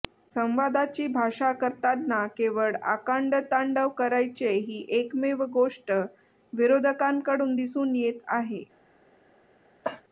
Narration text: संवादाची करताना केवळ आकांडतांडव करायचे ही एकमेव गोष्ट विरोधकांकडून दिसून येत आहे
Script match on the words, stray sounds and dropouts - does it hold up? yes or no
no